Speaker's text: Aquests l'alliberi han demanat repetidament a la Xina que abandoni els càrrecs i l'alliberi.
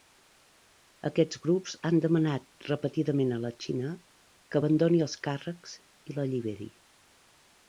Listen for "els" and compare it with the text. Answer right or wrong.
right